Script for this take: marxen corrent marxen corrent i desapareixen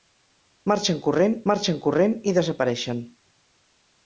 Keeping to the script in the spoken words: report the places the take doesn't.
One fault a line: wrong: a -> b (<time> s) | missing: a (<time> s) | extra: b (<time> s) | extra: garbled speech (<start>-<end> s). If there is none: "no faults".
no faults